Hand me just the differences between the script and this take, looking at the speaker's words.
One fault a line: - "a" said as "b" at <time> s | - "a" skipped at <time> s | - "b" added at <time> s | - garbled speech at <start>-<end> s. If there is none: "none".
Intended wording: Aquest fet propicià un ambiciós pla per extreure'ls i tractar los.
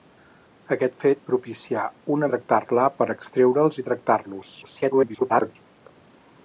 - "ambiciós" said as "tractar" at 2.3 s
- garbled speech at 4.6-5.6 s